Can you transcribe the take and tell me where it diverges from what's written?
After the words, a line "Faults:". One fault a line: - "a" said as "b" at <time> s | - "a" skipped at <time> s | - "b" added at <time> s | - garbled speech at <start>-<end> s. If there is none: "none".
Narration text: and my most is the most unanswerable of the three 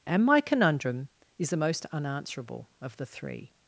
and my conundrum is the most unanswerable of the three
Faults:
- "most" said as "conundrum" at 0.4 s